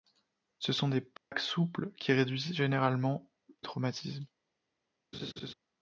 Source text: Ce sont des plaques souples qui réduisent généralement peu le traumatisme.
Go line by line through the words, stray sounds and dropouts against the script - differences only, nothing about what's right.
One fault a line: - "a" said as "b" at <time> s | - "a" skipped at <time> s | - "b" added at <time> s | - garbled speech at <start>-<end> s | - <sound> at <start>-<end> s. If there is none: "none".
- dropout at 1.2-1.3 s
- "peu le" skipped at 3.3 s
- laugh at 5.1-5.5 s